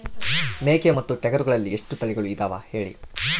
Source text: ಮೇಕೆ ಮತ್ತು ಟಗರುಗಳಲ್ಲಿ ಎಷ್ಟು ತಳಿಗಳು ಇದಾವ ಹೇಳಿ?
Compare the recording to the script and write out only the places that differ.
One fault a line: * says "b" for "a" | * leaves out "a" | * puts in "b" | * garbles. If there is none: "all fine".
all fine